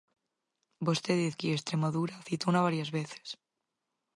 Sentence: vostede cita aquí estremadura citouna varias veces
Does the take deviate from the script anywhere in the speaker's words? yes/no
yes